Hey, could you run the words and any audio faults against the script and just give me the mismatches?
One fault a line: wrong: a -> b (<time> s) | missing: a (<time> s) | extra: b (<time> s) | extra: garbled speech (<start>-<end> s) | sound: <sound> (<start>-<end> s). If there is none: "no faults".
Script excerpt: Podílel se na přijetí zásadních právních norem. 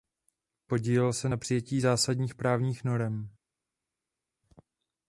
no faults